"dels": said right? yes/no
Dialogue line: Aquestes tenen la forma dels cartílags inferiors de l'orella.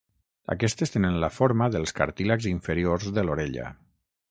yes